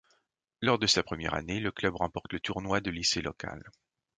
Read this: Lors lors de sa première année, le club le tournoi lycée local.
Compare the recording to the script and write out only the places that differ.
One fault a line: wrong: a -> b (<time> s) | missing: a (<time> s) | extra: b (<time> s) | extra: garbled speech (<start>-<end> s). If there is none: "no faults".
missing: lors (0.8 s)
extra: remporte (1.9 s)
extra: de (2.8 s)